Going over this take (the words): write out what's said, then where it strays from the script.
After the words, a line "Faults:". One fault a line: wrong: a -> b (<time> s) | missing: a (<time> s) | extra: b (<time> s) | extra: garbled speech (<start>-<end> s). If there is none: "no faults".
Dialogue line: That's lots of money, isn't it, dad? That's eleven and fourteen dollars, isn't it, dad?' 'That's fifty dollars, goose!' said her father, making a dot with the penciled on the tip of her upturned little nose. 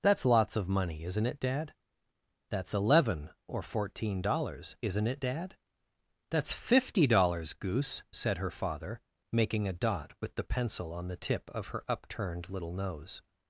That's lots of money, isn't it, dad? That's eleven or fourteen dollars, isn't it, dad?' 'That's fifty dollars, goose!' said her father, making a dot with the pencil on the tip of her upturned little nose.
Faults:
wrong: and -> or (3.5 s)
wrong: penciled -> pencil (10.4 s)